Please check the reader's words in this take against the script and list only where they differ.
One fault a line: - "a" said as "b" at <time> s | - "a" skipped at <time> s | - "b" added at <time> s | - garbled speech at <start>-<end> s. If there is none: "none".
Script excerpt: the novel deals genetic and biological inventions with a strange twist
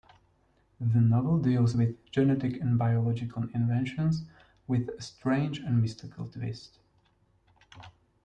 - "with" added at 1.7 s
- "and mystical" added at 5.6 s